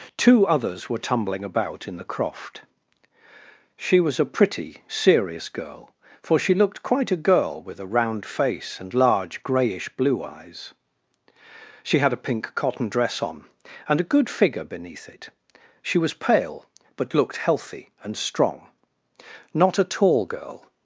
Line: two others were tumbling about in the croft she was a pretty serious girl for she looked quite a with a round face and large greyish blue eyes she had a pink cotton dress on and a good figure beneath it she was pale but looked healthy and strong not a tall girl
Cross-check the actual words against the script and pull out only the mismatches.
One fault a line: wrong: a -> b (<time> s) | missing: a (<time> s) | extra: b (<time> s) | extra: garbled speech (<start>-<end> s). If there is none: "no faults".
extra: girl (7.2 s)